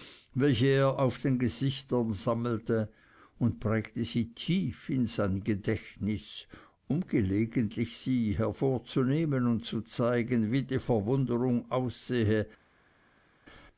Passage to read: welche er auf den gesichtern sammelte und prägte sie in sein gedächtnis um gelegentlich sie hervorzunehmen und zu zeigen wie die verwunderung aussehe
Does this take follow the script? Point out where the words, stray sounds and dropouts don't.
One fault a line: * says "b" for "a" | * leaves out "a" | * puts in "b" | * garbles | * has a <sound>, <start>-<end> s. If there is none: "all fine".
* puts in "tief"